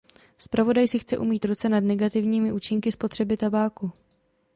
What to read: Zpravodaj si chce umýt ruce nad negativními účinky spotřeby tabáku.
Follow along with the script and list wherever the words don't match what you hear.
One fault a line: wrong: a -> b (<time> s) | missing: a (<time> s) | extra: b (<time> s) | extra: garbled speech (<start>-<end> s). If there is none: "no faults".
no faults